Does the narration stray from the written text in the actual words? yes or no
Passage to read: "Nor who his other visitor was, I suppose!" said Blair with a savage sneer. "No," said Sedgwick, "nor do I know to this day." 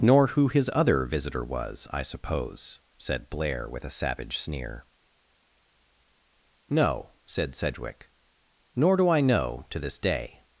no